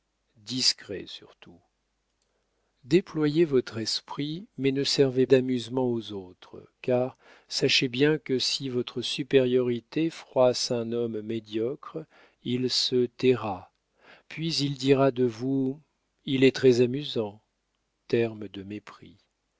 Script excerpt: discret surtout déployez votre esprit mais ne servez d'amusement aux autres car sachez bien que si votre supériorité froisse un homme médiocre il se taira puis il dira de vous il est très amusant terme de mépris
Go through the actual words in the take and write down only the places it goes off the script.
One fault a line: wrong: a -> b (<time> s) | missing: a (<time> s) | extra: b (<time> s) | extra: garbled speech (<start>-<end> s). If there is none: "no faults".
no faults